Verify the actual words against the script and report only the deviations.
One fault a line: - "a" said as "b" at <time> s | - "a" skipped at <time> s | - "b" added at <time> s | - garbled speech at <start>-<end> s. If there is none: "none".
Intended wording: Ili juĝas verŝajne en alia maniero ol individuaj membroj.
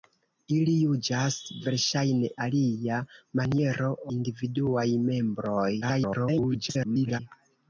- "en" skipped at 2.3 s
- "ol" skipped at 3.9 s
- garbled speech at 5.8-7.2 s